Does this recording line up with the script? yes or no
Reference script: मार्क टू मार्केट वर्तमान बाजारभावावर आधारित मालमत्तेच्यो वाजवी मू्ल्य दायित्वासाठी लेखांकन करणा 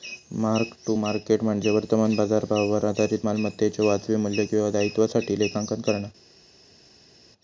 no